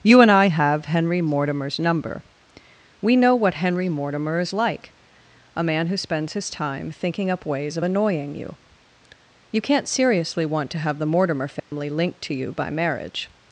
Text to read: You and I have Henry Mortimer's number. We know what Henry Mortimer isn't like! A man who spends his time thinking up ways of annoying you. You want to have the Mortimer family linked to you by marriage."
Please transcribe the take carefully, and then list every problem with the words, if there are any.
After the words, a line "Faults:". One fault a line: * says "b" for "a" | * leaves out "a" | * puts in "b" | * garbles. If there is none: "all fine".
You and I have Henry Mortimer's number. We know what Henry Mortimer is like! A man who spends his time thinking up ways of annoying you. You can't seriously want to have the Mortimer family linked to you by marriage."
Faults:
* says "is" for "isn't"
* puts in "can't seriously"